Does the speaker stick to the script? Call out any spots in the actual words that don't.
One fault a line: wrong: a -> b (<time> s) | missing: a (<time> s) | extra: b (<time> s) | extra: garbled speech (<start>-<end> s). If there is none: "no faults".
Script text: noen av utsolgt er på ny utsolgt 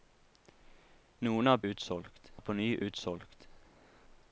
no faults